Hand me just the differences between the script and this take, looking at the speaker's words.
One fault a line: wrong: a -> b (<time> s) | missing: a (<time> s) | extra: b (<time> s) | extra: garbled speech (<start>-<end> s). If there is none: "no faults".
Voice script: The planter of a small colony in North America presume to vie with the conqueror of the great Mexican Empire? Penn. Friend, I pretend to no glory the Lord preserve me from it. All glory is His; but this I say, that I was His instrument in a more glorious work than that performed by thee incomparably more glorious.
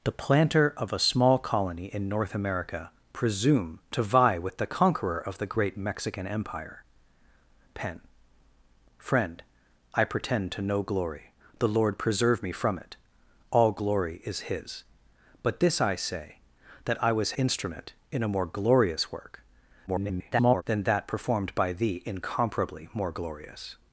missing: His (17.3 s)
extra: garbled speech (19.9-20.6 s)